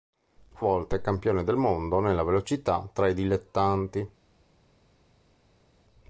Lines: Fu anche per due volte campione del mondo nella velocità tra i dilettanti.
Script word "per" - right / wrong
wrong